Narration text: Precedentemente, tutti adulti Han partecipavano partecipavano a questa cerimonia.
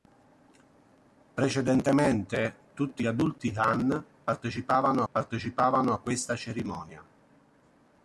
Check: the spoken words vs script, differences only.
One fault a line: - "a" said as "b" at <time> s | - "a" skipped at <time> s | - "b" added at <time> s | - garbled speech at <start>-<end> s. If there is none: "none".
none